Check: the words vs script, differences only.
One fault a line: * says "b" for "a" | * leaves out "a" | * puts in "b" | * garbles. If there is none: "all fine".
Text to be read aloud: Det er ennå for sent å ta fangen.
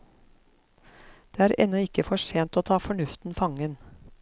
* puts in "ikke"
* puts in "fornuften"